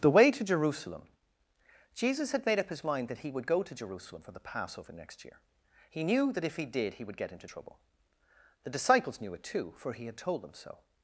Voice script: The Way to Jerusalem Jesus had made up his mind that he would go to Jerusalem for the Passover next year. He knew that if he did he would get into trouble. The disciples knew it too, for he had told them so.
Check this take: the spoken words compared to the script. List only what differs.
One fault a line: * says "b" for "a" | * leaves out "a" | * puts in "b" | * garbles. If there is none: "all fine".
all fine